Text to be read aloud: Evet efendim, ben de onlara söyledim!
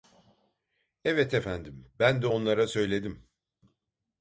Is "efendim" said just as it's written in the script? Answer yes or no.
yes